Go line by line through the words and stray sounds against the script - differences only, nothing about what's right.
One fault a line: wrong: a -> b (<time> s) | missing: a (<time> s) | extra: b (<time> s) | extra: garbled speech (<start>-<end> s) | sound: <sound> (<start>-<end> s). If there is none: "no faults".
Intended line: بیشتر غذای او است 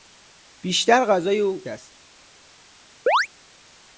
sound: chirp (3.1-3.3 s)